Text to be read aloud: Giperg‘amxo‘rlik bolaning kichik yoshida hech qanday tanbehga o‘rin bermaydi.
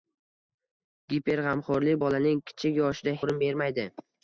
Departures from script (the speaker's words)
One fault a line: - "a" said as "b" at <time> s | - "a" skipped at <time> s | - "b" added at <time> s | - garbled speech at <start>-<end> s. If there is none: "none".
- "hech qanday tanbehga" skipped at 3.2 s